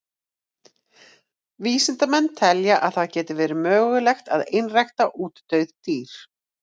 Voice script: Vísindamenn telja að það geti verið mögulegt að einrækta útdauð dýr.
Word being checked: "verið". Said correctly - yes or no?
yes